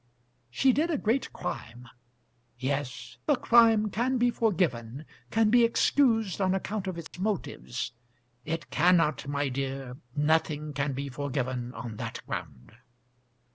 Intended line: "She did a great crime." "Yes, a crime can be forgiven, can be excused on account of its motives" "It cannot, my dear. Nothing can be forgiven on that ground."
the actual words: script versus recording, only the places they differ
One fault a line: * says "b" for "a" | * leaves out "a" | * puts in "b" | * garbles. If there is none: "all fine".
all fine